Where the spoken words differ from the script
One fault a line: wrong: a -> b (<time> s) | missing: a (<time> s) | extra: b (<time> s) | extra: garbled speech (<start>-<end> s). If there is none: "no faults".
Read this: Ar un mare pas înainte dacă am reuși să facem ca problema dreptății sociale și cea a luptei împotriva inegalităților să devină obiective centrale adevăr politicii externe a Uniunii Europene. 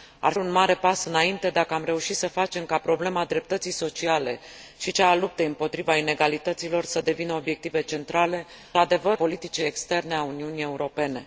no faults